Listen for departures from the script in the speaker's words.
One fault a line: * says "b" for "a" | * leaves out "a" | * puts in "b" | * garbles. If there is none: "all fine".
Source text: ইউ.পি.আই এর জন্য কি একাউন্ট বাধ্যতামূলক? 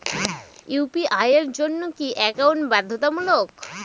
all fine